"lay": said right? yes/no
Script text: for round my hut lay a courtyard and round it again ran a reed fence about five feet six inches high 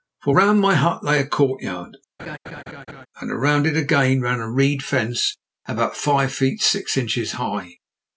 yes